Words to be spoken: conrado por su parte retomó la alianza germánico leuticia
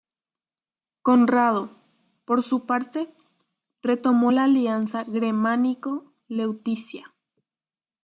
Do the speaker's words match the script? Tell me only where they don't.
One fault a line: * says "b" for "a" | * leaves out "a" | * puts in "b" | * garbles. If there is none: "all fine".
all fine